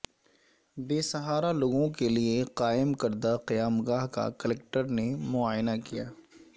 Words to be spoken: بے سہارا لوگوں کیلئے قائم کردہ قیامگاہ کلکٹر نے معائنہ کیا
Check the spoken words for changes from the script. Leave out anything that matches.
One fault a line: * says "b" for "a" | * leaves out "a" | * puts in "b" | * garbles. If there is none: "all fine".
* puts in "کا"